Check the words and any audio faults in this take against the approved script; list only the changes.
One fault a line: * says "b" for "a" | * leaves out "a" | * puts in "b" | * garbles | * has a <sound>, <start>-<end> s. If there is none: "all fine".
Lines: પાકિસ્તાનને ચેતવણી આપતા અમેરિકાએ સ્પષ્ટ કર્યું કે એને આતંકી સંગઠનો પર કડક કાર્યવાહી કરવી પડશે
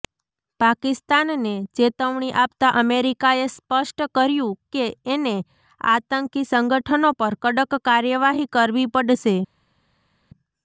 all fine